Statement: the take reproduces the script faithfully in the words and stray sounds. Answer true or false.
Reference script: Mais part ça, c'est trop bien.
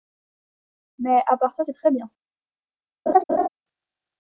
false